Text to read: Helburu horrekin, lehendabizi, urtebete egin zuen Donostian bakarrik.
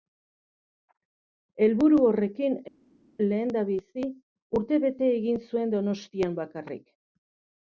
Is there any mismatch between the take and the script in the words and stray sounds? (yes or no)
no